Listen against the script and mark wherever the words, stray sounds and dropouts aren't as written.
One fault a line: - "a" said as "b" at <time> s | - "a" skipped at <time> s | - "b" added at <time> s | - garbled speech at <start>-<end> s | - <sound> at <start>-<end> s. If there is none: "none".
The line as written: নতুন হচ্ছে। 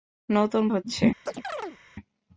- chirp at 1.3-1.8 s